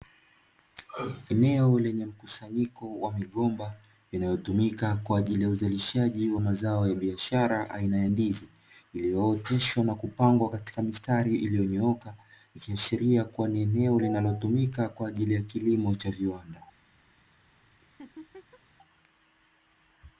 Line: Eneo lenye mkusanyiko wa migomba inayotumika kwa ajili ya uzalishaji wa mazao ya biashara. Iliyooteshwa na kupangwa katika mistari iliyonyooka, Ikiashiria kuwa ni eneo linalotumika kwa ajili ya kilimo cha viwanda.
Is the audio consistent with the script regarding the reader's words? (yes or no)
no